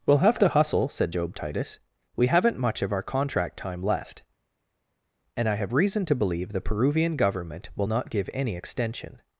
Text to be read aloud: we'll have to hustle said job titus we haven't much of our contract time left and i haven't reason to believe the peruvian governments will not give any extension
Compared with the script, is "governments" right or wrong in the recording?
wrong